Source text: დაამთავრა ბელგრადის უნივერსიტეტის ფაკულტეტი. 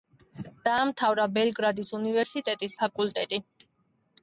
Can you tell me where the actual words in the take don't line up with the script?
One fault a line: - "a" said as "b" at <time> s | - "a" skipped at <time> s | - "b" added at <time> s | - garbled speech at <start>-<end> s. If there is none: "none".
none